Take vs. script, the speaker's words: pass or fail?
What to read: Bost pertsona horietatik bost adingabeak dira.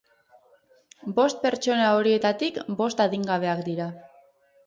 pass